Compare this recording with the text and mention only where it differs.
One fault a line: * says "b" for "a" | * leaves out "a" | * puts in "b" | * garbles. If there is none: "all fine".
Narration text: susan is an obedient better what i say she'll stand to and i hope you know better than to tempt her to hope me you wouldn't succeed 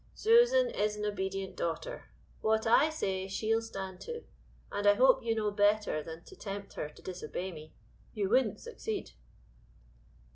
* says "daughter" for "better"
* says "disobey" for "hope"